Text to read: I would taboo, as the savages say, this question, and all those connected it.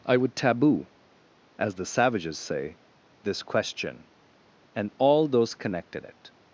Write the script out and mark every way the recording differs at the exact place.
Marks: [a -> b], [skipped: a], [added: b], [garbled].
I would taboo, as the savages say, this question, and all those connected it.